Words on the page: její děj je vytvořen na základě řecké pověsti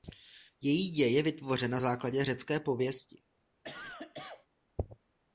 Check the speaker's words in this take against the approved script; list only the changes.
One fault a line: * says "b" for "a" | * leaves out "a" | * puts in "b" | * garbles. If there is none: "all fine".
all fine